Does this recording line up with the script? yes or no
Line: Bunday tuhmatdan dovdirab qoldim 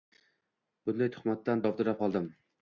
yes